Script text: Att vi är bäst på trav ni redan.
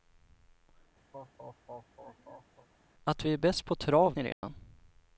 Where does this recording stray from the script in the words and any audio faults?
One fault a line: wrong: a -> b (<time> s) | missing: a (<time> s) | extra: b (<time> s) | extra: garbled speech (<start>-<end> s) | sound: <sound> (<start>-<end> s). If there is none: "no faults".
sound: laugh (1.1-2.7 s)
sound: dropout (4.3-4.4 s)